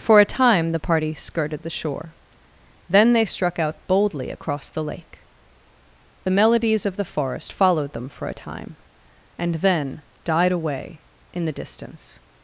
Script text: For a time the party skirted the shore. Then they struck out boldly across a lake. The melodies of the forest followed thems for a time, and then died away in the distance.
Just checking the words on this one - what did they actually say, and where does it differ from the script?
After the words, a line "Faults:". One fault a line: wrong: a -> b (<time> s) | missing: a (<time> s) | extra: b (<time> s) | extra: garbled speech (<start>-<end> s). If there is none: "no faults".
For a time the party skirted the shore. Then they struck out boldly across the lake. The melodies of the forest followed them for a time, and then died away in the distance.
Faults:
wrong: a -> the (4.7 s)
wrong: thems -> them (7.9 s)